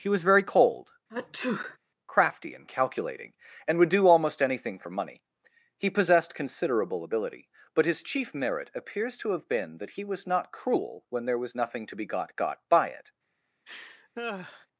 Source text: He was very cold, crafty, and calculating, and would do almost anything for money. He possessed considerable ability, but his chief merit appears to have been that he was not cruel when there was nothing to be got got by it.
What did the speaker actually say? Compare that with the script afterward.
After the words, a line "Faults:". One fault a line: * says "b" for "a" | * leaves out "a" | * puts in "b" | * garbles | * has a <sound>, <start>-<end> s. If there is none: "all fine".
He was very cold, crafty, and calculating, and would do almost anything for money. He possessed considerable ability, but his chief merit appears to have been that he was not cruel when there was nothing to be got got by it.
Faults:
* has a sneeze, 1.1-1.8 s
* has a laugh, 13.7-14.7 s